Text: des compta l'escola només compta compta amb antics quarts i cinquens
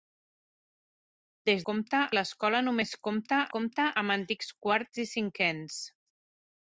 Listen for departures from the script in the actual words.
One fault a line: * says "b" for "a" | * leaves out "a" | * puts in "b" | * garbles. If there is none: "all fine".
all fine